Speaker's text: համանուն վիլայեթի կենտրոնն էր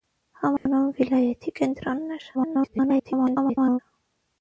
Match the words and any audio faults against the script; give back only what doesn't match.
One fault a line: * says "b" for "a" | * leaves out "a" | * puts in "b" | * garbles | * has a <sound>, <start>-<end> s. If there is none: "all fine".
* has a dropout, 0.6-0.7 s
* garbles